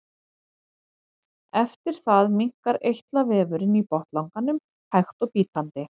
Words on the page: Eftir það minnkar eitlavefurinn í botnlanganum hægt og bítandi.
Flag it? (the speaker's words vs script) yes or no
no